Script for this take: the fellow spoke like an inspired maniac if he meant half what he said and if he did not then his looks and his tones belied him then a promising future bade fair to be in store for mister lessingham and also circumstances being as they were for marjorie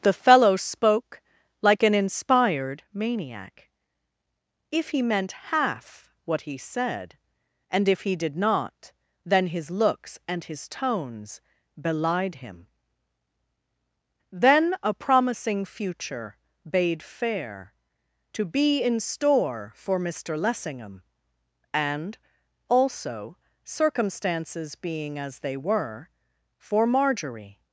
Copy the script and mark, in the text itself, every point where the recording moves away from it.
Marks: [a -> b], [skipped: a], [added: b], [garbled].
the fellow spoke like an inspired maniac if he meant half what he said and if he did not then his looks and his tones belied him then a promising future bade fair to be in store for mister lessingham and also circumstances being as they were for marjorie